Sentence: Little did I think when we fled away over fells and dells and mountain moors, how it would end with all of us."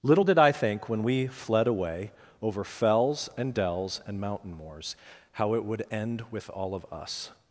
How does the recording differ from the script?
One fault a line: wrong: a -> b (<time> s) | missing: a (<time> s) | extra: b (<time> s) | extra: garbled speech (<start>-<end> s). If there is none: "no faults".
no faults